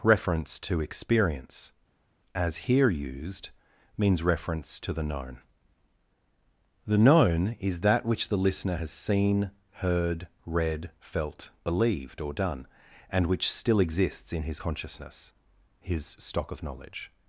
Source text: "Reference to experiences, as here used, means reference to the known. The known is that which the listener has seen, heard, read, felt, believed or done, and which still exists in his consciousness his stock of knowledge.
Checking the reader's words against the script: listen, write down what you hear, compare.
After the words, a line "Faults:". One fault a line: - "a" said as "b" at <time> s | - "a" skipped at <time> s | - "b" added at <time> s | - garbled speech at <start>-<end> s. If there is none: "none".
"Reference to experience, as here used, means reference to the known. The known is that which the listener has seen, heard, read, felt, believed or done, and which still exists in his consciousness his stock of knowledge.
Faults:
- "experiences" said as "experience" at 0.8 s